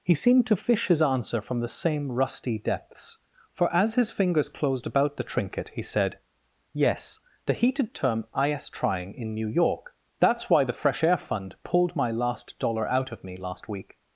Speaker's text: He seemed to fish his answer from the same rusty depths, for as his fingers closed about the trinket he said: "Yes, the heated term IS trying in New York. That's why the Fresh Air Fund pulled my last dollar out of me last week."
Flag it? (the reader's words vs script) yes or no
no